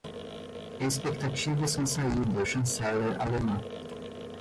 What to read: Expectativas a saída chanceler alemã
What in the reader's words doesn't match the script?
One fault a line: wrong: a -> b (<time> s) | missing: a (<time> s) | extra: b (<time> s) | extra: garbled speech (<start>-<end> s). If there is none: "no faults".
no faults